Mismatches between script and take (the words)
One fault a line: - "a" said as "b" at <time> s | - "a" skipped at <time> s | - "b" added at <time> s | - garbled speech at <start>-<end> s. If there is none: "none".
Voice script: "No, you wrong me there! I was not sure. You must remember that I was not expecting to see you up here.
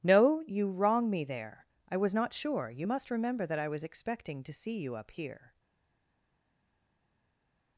- "not" skipped at 3.8 s